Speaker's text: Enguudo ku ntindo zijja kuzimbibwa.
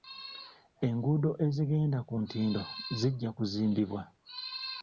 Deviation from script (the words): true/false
true